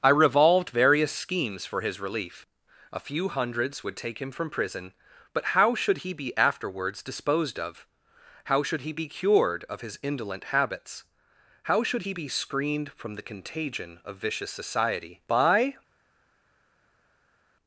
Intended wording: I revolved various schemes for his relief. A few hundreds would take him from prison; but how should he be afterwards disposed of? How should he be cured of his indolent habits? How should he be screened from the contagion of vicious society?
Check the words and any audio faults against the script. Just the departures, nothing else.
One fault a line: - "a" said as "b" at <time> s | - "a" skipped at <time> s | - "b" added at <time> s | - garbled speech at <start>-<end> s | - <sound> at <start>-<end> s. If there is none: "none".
- "By" added at 15.3 s